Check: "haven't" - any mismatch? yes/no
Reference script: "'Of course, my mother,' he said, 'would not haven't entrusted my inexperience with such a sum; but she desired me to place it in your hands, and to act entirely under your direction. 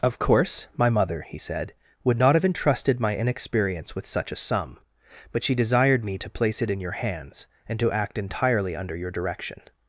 yes